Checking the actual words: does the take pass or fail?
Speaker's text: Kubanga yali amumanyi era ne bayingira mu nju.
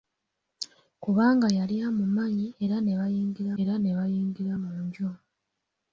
fail